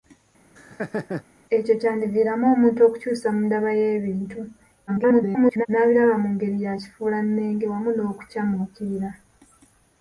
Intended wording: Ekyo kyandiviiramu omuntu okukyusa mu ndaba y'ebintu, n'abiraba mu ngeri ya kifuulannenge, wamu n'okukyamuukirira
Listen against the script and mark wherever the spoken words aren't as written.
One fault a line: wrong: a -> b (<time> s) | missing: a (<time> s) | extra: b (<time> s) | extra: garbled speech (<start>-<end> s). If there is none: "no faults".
extra: garbled speech (4.9-5.7 s)